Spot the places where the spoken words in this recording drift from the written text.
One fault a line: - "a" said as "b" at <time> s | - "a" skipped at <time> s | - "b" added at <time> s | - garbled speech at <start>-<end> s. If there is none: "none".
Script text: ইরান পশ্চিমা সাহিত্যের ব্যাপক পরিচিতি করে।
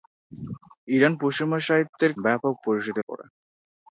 none